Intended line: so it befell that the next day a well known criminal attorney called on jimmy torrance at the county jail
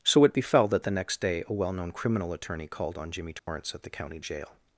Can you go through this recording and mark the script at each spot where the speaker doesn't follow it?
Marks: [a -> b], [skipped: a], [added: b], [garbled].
so it befell that the next day a well known criminal attorney called on jimmy torrance at the county jail